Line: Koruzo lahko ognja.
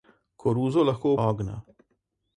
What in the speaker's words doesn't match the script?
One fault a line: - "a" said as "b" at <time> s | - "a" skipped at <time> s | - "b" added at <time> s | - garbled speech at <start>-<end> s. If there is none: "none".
none